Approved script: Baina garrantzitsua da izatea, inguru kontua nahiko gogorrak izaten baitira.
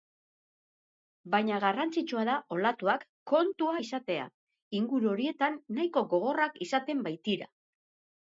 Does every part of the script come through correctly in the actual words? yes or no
no